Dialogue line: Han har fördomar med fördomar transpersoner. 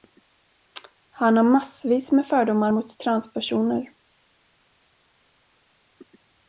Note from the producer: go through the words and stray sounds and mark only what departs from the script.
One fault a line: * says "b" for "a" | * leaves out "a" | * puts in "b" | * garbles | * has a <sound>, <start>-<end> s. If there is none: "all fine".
* says "massvis" for "fördomar"
* puts in "mot"